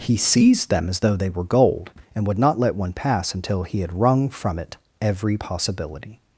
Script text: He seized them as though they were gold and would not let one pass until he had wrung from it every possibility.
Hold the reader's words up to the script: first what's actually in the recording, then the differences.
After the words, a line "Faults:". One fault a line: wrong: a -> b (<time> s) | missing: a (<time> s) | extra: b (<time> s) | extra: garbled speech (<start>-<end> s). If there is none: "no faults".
He seized them as though they were gold and would not let one pass until he had wrung from it every possibility.
Faults:
no faults